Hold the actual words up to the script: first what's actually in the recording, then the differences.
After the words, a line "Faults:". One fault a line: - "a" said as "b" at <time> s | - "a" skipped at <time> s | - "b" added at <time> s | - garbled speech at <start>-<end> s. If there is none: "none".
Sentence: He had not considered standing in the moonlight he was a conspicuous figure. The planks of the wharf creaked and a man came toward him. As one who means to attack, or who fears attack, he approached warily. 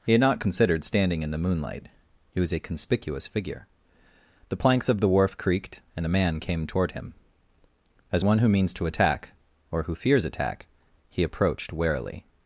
He had not considered standing in the moonlight he was a conspicuous figure. The planks of the wharf creaked and a man came toward him. As one who means to attack, or who fears attack, he approached warily.
Faults:
none